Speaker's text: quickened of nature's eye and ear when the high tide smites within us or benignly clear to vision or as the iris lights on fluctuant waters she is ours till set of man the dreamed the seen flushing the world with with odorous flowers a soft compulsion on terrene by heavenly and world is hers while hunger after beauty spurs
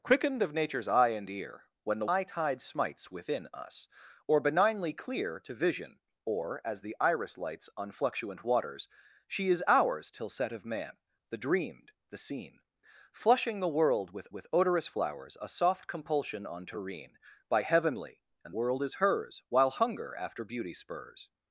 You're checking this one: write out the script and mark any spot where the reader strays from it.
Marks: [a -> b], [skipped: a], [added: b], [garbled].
quickened of nature's eye and ear when the high tide smites within us or benignly clear to vision or as the iris lights on fluctuant waters she is ours till set of man the dreamed the seen flushing the world with with odorous flowers a soft compulsion on terrene by heavenly and world is hers while hunger after beauty spurs